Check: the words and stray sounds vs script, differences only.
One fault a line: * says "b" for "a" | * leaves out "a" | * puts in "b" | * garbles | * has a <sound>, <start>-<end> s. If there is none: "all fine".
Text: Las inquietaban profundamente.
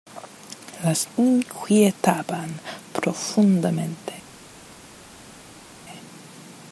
all fine